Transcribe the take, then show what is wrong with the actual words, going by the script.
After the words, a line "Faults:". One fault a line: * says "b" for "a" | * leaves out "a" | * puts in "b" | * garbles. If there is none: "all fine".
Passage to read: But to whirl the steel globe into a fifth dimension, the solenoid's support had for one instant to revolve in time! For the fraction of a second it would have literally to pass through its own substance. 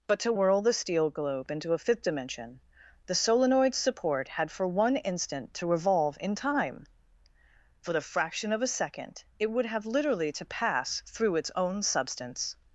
But to whirl the steel globe into a fifth dimension, the solenoid's support had for one instant to revolve in time! For the fraction of a second it would have literally to pass through its own substance.
Faults:
all fine